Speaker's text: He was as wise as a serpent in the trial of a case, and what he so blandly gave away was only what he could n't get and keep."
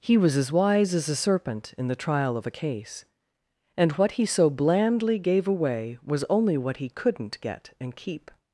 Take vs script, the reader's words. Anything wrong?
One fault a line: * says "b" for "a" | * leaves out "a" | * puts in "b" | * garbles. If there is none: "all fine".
all fine